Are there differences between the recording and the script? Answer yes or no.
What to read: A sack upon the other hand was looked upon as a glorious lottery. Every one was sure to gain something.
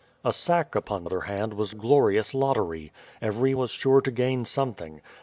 yes